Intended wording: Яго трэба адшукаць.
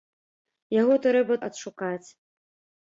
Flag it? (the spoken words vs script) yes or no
no